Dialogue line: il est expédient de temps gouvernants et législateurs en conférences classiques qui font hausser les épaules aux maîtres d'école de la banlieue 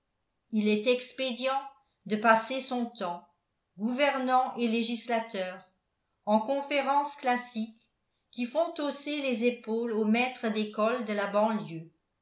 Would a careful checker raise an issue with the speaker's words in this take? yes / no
yes